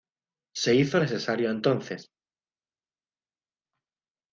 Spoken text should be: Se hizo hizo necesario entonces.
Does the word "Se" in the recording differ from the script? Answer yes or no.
no